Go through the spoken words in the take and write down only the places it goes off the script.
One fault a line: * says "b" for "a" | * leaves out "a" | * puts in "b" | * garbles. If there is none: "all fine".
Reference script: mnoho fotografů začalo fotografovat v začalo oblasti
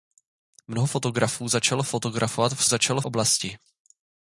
all fine